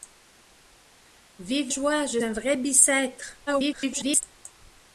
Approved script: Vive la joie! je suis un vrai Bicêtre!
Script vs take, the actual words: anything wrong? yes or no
yes